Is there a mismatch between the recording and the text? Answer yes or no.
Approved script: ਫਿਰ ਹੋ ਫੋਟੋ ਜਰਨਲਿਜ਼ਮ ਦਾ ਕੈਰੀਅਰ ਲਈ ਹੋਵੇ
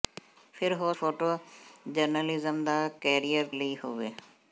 no